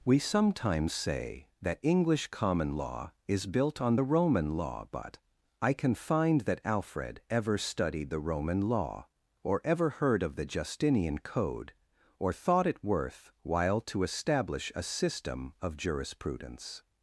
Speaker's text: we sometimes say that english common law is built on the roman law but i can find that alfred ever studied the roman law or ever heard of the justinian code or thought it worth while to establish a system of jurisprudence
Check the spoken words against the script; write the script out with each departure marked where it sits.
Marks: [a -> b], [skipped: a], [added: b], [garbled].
we sometimes say that english common law is built on the roman law but i can find that alfred ever studied the roman law or ever heard of the justinian code or thought it worth while to establish a system of jurisprudence